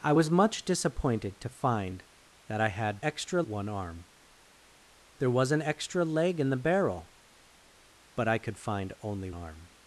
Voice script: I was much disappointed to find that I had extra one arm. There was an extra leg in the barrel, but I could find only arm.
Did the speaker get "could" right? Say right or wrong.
right